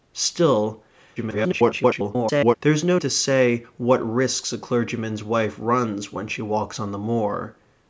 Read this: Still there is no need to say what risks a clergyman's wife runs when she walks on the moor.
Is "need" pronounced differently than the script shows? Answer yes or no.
yes